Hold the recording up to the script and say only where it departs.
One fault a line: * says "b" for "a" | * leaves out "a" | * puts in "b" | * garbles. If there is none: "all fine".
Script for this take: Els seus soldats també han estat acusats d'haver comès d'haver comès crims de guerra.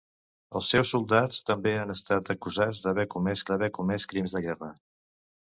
all fine